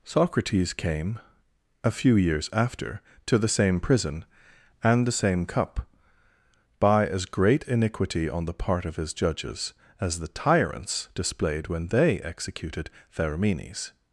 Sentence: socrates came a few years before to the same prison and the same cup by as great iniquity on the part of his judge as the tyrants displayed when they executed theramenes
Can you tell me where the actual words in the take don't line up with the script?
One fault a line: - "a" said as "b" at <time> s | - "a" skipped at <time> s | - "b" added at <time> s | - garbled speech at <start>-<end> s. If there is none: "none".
- "before" said as "after" at 2.5 s
- "judge" said as "judges" at 9.1 s